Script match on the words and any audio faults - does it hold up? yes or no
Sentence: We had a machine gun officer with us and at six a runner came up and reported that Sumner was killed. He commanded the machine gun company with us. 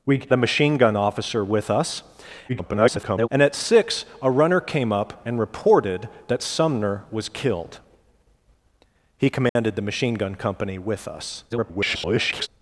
no